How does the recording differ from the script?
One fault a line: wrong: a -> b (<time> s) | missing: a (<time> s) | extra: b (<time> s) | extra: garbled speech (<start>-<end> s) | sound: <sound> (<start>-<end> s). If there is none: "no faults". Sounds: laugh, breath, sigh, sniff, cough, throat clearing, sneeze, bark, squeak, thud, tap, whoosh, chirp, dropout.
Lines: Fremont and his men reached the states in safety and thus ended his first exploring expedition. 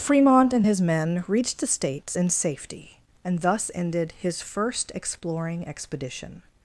no faults